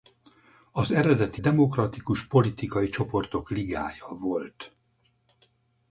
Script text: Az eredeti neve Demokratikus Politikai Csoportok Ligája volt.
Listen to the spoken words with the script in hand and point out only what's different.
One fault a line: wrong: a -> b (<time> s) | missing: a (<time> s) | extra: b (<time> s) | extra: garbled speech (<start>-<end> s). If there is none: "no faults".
missing: neve (1.4 s)